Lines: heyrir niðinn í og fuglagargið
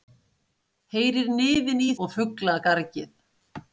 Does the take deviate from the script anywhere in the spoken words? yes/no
no